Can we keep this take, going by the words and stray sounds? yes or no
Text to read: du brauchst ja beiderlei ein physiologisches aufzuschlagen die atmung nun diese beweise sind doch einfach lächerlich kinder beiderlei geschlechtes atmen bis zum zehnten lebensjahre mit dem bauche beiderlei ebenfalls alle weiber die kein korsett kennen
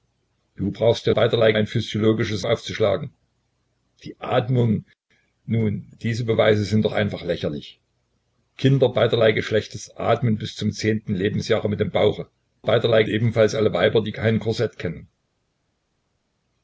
yes